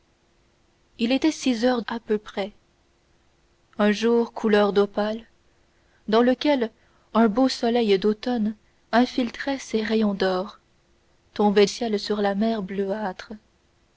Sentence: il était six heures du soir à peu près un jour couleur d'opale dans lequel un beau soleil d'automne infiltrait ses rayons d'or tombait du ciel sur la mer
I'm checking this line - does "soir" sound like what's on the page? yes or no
no